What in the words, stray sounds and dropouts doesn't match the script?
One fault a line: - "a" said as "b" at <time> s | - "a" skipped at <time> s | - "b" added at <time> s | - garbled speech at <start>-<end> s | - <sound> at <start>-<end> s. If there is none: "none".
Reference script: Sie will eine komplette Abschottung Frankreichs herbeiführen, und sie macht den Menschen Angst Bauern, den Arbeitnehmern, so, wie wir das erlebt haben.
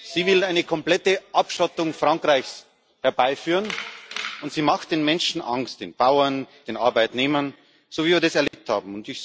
- "den" added at 5.8 s
- dropout at 8.5-8.5 s